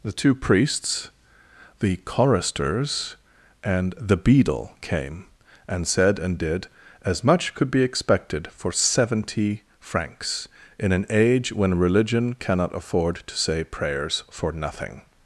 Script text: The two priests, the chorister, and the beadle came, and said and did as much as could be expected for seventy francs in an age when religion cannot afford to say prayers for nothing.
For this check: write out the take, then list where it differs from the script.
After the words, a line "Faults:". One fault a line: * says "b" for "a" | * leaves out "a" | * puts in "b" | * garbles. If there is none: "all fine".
The two priests, the choristers, and the beadle came, and said and did as much could be expected for seventy francs in an age when religion cannot afford to say prayers for nothing.
Faults:
* says "choristers" for "chorister"
* leaves out "as"